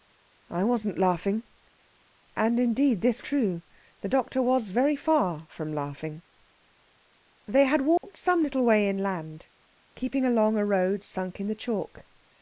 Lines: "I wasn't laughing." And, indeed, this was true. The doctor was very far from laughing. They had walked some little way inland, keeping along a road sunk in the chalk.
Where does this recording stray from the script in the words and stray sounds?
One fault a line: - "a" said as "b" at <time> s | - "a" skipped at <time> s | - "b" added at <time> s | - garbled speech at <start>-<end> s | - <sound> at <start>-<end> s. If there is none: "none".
- "was" skipped at 3.2 s
- dropout at 8.0-8.0 s